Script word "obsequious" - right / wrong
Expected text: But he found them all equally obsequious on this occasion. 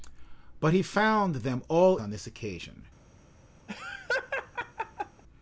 wrong